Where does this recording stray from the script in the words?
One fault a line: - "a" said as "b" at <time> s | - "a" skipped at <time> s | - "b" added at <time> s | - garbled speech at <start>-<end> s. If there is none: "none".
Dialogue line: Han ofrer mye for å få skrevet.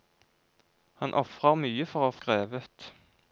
- "få" skipped at 2.1 s